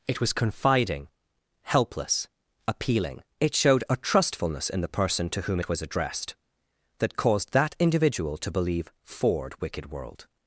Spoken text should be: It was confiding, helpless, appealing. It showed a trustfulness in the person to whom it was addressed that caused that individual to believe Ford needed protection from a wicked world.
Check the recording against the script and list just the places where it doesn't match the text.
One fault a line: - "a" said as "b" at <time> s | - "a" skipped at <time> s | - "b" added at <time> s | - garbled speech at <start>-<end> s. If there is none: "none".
- "needed protection from a" skipped at 9.6 s